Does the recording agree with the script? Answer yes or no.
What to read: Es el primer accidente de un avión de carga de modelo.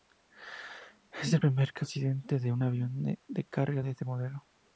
no